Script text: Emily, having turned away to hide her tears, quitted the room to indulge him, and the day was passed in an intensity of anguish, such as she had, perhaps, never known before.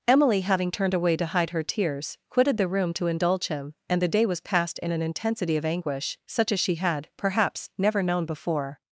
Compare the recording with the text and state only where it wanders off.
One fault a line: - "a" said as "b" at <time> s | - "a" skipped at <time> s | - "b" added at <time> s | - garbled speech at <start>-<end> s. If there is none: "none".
none